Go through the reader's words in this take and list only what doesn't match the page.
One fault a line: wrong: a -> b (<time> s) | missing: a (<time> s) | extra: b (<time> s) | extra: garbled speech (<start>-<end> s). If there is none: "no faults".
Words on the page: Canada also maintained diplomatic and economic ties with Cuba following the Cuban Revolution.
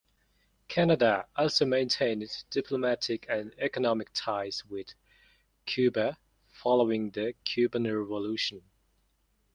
no faults